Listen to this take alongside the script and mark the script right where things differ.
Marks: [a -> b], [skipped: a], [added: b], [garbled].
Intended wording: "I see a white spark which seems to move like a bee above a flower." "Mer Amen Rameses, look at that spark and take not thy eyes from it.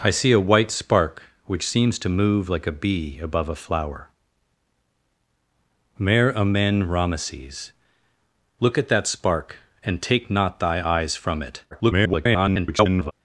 "I see a white spark which seems to move like a bee above a flower." "Mer Amen Rameses, look at that spark and take not thy eyes from it. [garbled]